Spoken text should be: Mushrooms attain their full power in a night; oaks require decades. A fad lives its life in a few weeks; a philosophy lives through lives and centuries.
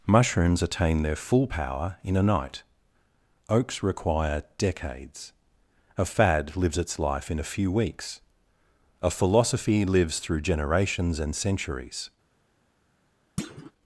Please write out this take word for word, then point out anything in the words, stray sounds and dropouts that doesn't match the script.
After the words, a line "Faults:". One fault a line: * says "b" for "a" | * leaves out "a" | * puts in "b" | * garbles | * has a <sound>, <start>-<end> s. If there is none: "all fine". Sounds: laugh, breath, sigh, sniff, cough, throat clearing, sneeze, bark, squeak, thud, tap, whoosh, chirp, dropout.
Mushrooms attain their full power in a night; oaks require decades. A fad lives its life in a few weeks; a philosophy lives through generations and centuries.
Faults:
* says "generations" for "lives"
* has a thud, 13.4-13.7 s